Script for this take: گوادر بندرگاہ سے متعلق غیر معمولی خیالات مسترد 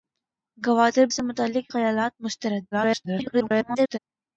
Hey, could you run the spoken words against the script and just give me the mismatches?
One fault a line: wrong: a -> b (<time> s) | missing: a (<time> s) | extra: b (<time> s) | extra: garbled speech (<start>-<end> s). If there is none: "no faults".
missing: بندرگاہ (1.1 s)
missing: غیر معمولی (1.7 s)
extra: garbled speech (2.7-4.0 s)